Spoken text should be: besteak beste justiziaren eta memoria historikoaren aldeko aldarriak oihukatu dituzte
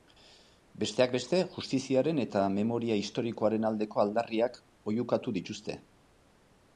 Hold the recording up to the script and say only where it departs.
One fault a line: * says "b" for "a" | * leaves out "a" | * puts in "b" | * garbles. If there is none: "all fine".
all fine